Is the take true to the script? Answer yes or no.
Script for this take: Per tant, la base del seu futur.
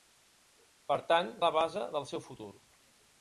yes